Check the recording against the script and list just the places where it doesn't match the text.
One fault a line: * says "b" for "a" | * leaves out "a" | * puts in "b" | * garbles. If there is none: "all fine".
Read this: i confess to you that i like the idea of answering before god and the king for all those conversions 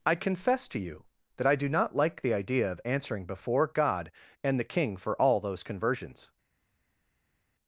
* puts in "do not"